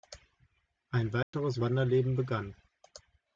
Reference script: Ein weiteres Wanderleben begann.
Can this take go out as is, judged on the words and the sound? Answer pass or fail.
fail